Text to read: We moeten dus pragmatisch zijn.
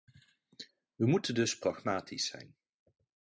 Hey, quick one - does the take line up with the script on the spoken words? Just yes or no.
yes